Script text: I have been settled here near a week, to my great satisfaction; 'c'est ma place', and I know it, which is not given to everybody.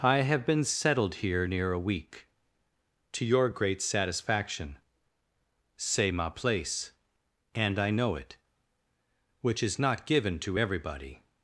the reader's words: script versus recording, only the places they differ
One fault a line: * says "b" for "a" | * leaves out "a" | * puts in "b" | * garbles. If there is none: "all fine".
* says "your" for "my"